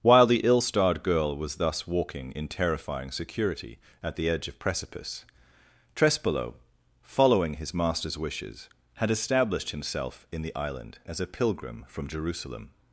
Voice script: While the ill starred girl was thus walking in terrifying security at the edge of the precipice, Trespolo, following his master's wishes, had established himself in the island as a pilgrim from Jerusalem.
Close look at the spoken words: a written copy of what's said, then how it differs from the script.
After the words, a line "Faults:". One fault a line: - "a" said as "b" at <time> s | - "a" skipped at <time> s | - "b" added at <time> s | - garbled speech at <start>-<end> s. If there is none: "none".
While the ill starred girl was thus walking in terrifying security at the edge of precipice, Trespolo, following his master's wishes, had established himself in the island as a pilgrim from Jerusalem.
Faults:
- "the" skipped at 4.6 s